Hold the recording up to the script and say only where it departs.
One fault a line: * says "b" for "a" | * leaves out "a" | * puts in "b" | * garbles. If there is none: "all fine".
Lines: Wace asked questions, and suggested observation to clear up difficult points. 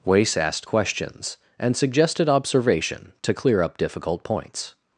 all fine